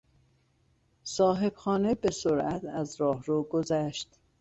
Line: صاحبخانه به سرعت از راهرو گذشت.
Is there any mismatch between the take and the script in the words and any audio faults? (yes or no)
no